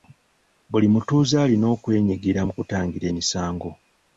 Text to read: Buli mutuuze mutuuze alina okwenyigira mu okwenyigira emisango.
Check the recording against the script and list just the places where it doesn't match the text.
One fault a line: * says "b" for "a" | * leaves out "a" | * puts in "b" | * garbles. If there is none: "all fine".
* leaves out "mutuuze"
* says "kutangira" for "okwenyigira"